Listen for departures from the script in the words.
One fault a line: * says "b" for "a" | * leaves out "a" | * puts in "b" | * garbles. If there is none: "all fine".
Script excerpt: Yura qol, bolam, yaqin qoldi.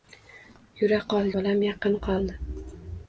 all fine